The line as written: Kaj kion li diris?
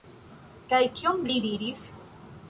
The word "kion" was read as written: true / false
true